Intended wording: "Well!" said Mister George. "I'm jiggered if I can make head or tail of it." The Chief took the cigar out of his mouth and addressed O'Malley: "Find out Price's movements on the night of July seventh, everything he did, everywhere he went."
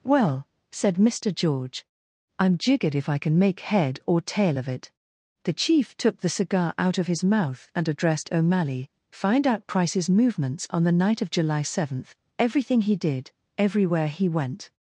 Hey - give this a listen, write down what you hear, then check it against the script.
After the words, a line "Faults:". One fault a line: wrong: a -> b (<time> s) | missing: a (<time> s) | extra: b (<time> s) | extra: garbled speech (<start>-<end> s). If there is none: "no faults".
"Well!" said Mister George. "I'm jiggered if I can make head or tail of it." The Chief took the cigar out of his mouth and addressed O'Malley: "Find out Price's movements on the night of July seventh, everything he did, everywhere he went."
Faults:
no faults